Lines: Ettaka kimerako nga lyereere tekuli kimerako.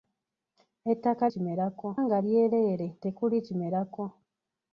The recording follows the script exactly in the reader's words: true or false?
true